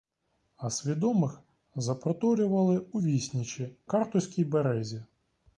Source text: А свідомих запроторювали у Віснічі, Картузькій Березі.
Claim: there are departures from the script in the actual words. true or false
false